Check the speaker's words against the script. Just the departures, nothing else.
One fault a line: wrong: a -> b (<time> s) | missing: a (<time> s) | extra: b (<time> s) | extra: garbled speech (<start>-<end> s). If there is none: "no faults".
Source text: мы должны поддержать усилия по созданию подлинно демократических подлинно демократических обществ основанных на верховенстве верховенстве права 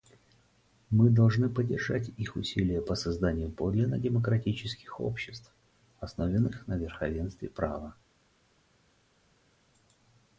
extra: их (2.2 s)
missing: подлинно демократических (5.0 s)
missing: верховенстве (7.5 s)